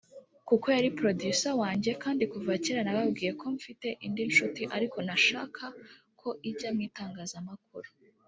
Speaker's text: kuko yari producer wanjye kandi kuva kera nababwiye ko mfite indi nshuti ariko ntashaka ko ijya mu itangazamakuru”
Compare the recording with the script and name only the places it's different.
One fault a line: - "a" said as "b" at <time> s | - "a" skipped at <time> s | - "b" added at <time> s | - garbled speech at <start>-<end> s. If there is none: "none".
none